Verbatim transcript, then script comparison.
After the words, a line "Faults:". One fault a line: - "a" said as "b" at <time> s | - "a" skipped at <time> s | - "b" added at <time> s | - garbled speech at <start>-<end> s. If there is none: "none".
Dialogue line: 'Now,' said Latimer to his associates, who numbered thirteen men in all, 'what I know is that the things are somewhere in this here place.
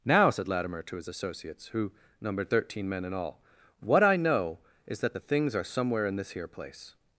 'Now,' said Latimer to his associates, who numbered thirteen men in all, 'what I know is that the things are somewhere in this here place.
Faults:
none